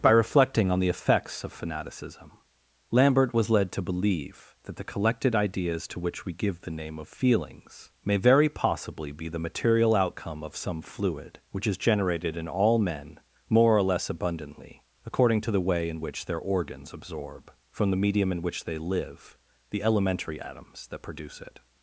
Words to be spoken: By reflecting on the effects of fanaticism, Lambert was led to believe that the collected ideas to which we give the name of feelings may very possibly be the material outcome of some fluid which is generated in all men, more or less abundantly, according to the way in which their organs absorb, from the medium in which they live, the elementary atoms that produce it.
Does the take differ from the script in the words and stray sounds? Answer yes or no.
no